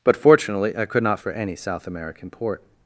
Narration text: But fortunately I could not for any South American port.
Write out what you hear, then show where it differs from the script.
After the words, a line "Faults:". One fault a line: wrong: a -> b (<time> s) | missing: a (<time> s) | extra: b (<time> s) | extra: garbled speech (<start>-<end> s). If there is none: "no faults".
But fortunately I could not for any South American port.
Faults:
no faults